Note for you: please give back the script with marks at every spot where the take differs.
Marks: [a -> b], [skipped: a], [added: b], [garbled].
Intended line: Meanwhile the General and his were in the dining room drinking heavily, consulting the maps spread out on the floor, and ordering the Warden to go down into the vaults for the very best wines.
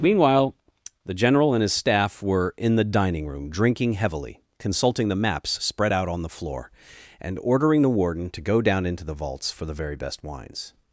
Meanwhile the General and his [added: staff] were in the dining room drinking heavily, consulting the maps spread out on the floor, and ordering the Warden to go down into the vaults for the very best wines.